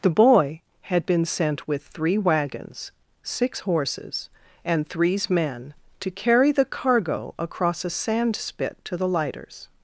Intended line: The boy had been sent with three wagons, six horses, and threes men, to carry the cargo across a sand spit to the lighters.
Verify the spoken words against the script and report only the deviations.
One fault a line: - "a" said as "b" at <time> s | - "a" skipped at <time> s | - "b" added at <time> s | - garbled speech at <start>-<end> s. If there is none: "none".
none